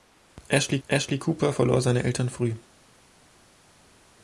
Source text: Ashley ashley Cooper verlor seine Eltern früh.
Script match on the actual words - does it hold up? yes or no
yes